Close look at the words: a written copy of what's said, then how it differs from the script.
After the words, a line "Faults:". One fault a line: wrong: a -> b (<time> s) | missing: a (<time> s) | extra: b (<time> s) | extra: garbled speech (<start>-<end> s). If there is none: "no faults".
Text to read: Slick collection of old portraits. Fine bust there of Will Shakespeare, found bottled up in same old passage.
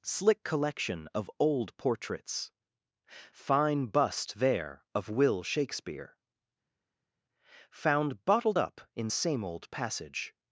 Slick collection of old portraits. Fine bust there of Will Shakespeare, found bottled up in same old passage.
Faults:
no faults